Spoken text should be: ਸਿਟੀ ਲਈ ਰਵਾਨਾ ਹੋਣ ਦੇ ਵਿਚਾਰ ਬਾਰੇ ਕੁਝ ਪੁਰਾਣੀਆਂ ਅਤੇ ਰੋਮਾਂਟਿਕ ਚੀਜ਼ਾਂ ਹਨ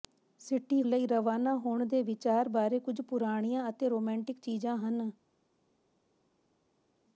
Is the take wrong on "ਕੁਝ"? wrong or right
right